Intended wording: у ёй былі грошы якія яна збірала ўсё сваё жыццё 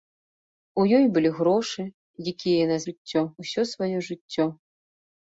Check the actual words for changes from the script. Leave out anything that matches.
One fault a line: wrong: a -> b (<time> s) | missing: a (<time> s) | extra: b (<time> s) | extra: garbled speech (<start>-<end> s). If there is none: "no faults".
wrong: збірала -> жыццё (2.9 s)